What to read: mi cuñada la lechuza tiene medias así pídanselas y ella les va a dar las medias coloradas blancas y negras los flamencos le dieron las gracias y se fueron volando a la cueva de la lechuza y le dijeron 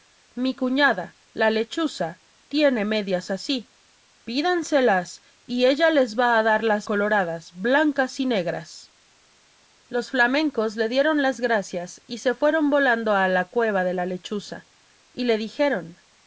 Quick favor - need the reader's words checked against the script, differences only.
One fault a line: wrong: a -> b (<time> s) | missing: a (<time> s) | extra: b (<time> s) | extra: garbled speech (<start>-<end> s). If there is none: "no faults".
missing: medias (6.9 s)